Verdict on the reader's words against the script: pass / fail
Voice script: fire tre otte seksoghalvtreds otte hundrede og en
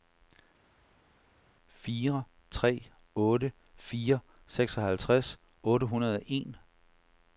fail